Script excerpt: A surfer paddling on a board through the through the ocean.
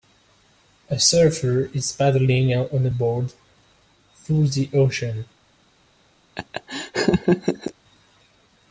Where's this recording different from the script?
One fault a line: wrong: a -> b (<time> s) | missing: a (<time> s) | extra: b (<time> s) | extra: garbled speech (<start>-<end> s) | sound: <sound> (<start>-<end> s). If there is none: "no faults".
extra: is (1.8 s)
missing: through the (4.7 s)
sound: laugh (6.4-7.7 s)